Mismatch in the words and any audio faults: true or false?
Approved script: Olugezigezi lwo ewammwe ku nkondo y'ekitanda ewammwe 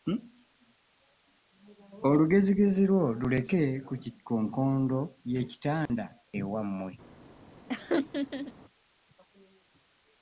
true